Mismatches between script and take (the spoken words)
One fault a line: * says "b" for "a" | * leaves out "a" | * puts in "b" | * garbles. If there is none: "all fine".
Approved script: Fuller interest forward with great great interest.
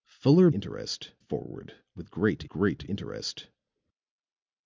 all fine